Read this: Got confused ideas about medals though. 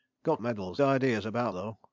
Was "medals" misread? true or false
true